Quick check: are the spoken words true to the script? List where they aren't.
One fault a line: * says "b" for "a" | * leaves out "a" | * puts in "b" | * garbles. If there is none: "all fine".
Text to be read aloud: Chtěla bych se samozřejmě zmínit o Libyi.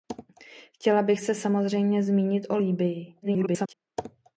* garbles